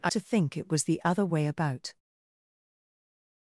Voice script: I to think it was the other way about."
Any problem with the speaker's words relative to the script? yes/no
no